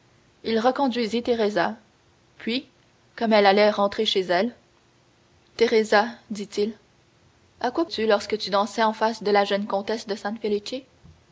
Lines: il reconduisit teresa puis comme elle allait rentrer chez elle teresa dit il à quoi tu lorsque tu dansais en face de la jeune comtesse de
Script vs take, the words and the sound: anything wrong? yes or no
no